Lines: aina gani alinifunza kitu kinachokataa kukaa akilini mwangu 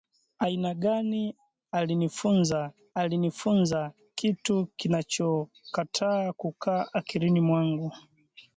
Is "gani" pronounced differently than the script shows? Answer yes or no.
no